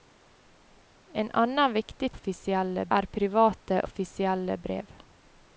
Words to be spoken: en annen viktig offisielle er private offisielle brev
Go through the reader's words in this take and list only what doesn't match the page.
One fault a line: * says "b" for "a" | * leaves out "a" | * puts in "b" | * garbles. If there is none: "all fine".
all fine